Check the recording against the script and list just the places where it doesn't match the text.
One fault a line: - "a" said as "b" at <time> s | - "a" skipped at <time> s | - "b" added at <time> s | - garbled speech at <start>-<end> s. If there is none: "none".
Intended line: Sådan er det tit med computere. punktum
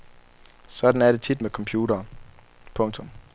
none